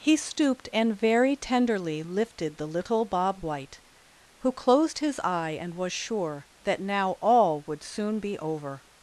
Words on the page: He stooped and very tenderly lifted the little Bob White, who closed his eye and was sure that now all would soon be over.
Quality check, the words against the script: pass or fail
pass